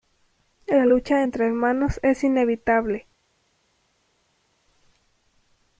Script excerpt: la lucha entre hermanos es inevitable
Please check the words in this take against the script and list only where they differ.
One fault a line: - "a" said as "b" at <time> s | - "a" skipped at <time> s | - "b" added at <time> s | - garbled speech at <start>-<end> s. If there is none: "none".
none